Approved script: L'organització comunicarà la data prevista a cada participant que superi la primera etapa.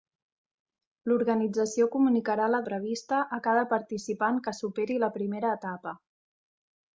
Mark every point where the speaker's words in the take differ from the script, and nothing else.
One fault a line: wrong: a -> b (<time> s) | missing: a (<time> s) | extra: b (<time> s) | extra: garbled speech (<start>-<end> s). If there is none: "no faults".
missing: data (2.6 s)